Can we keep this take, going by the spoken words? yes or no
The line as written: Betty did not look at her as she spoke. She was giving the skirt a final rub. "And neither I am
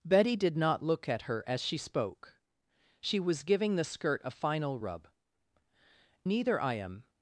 no